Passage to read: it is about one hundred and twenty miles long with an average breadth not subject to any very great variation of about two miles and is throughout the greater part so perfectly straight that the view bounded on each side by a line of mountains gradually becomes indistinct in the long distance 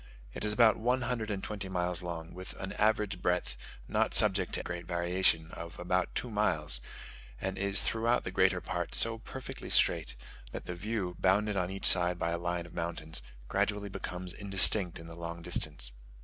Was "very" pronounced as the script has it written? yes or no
no